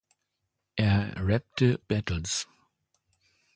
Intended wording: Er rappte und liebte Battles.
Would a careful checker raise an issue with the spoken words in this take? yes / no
yes